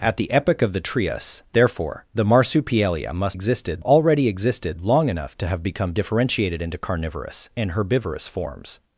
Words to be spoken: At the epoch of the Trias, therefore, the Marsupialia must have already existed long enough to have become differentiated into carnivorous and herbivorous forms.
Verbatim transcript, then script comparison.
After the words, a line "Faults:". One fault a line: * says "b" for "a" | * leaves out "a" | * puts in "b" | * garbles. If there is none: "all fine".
At the epoch of the Trias, therefore, the Marsupialia must existed already existed long enough to have become differentiated into carnivorous and herbivorous forms.
Faults:
* says "existed" for "have"